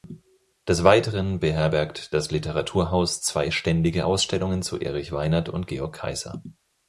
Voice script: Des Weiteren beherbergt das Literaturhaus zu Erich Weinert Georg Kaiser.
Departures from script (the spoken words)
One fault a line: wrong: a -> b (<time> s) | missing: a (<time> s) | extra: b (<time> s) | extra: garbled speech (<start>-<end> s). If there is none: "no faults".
extra: zwei ständige Ausstellungen (3.2 s)
extra: und (5.5 s)